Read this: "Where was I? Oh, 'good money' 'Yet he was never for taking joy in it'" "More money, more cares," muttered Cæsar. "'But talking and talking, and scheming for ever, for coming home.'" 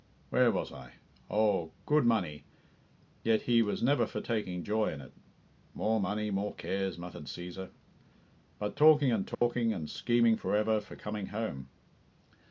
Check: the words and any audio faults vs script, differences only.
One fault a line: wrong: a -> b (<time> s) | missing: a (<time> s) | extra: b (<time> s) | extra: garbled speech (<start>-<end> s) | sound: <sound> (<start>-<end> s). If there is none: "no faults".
sound: dropout (9.3-9.4 s)